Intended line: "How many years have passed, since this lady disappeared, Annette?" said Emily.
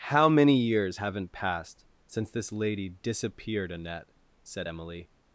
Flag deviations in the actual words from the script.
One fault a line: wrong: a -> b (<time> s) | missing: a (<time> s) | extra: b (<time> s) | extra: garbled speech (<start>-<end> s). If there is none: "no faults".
wrong: have -> haven't (0.9 s)